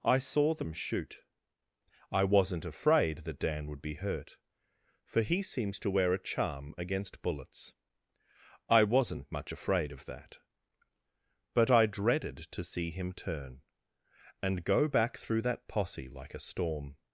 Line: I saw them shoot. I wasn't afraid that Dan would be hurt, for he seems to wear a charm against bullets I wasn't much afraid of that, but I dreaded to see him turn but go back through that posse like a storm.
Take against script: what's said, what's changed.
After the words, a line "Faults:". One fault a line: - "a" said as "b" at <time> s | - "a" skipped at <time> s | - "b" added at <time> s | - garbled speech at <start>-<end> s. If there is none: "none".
I saw them shoot. I wasn't afraid that Dan would be hurt, for he seems to wear a charm against bullets I wasn't much afraid of that, but I dreaded to see him turn and go back through that posse like a storm.
Faults:
- "but" said as "and" at 14.4 s